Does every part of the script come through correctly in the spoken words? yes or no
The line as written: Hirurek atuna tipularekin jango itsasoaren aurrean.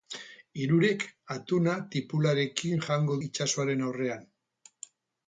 yes